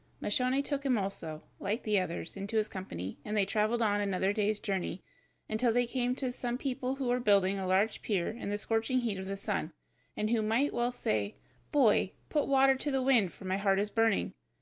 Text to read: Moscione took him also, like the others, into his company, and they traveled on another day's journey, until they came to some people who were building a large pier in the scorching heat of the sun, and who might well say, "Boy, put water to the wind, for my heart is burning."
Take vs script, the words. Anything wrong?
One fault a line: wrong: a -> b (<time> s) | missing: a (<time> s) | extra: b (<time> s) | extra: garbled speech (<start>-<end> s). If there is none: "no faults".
no faults